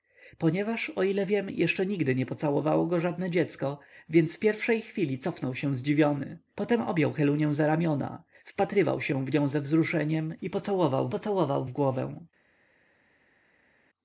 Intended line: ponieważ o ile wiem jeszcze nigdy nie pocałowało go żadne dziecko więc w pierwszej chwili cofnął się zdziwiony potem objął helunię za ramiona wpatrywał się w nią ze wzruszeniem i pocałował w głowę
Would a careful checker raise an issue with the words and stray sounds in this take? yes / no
yes